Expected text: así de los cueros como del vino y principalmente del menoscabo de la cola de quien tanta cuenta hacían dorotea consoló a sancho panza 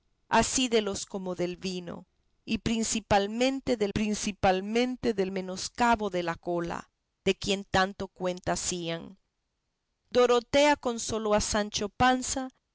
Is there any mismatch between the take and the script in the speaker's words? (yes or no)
yes